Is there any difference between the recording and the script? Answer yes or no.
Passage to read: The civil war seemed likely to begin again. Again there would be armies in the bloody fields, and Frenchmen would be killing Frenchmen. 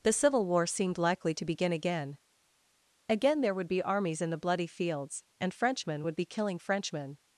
no